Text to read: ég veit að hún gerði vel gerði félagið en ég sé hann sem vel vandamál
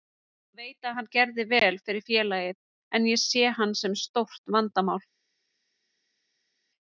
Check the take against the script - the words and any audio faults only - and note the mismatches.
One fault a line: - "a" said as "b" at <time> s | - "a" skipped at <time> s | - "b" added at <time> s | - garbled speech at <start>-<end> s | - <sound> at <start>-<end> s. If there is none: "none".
- "hún" said as "hann" at 1.0 s
- "gerði" said as "fyrir" at 1.9 s
- "vel" said as "stórt" at 4.0 s